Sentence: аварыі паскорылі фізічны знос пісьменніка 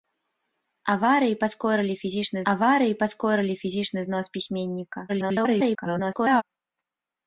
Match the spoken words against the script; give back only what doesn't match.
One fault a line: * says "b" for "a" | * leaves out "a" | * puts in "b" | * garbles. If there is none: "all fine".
* puts in "аварыі паскорылі фізічны"
* garbles